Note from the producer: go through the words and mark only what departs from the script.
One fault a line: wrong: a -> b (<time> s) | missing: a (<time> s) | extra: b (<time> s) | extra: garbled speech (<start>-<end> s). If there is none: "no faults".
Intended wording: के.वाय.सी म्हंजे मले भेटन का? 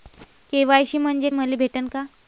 no faults